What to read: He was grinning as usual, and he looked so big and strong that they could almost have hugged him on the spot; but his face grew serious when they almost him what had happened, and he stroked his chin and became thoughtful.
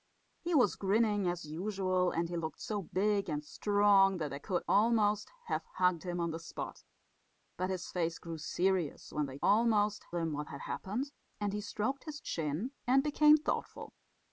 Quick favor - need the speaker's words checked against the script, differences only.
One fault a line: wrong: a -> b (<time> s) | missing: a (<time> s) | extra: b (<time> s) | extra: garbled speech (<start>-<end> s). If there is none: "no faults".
no faults